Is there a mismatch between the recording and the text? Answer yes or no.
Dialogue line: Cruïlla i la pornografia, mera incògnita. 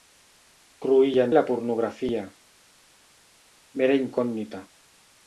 no